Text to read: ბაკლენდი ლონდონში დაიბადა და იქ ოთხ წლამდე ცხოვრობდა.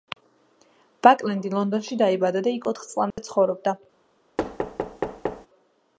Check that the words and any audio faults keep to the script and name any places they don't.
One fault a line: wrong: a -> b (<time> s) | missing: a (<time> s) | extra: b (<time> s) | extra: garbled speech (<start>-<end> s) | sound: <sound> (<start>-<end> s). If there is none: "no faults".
sound: dropout (3.1-3.2 s)
sound: thud (4.4-5.5 s)